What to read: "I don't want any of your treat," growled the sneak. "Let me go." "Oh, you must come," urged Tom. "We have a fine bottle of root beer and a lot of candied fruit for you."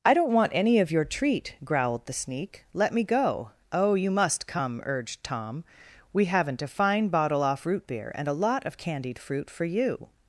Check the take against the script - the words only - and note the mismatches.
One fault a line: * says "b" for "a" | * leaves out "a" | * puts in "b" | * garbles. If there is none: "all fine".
* says "haven't" for "have"
* says "off" for "of"